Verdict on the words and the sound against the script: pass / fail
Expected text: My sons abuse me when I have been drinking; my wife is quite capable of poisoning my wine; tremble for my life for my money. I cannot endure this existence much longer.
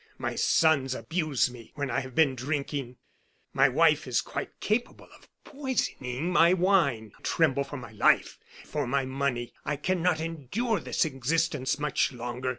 pass